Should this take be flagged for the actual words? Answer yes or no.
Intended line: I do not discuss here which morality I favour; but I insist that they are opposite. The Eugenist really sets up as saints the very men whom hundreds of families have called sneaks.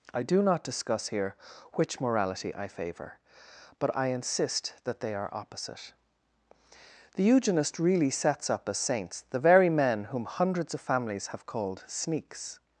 no